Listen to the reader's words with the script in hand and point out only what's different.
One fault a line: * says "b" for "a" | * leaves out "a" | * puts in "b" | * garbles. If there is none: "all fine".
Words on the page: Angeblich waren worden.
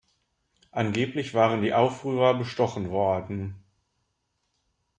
* puts in "die Aufrührer bestochen"